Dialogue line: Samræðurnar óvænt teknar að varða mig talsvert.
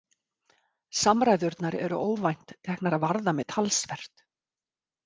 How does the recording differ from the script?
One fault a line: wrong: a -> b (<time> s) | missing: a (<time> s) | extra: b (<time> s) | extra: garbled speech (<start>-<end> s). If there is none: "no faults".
extra: eru (1.9 s)